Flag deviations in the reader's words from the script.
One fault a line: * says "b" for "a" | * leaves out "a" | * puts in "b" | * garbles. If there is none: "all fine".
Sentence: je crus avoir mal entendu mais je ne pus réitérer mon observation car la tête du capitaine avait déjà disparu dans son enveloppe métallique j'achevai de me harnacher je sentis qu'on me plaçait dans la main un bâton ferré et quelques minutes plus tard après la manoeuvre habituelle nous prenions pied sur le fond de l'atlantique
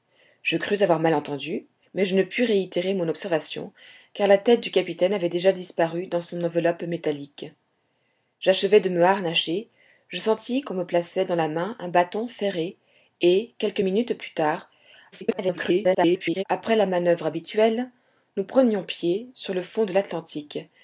* garbles